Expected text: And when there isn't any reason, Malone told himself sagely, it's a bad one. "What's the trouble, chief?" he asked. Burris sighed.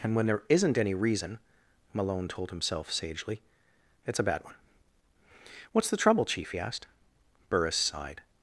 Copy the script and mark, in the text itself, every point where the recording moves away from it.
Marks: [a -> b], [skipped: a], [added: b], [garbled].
And when there isn't any reason, Malone told himself sagely, it's a bad one. "What's the trouble, chief?" he asked. Burris sighed.